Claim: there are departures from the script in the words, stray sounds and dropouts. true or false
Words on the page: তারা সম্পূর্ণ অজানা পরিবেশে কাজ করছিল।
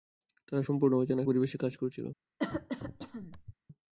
true